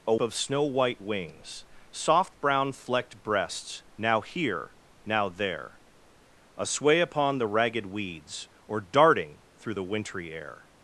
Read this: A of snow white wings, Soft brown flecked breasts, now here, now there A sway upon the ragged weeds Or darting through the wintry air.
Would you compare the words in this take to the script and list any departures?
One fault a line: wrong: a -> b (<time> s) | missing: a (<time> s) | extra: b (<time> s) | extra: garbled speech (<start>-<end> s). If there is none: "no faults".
no faults